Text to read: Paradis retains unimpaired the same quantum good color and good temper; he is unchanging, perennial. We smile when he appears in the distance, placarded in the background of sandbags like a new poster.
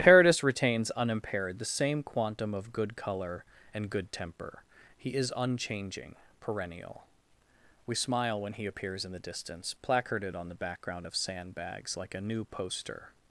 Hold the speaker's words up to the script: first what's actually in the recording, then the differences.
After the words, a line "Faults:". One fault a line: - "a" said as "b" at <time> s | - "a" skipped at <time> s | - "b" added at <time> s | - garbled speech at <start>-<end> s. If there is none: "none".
Paradis retains unimpaired the same quantum of good color and good temper; he is unchanging, perennial. We smile when he appears in the distance, placarded on the background of sandbags like a new poster.
Faults:
- "of" added at 2.5 s
- "in" said as "on" at 10.3 s